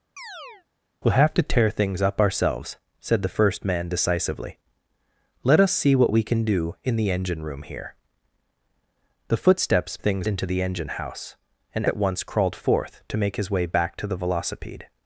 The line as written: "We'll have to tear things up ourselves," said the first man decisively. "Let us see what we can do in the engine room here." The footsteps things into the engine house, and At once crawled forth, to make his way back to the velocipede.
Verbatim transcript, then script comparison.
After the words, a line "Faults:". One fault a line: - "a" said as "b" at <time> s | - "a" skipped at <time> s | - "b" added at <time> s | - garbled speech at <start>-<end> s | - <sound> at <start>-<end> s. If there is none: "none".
"We'll have to tear things up ourselves," said the first man decisively. "Let us see what we can do in the engine room here." The footsteps things into the engine house, and At once crawled forth, to make his way back to the velocipede.
Faults:
- chirp at 0.2-0.7 s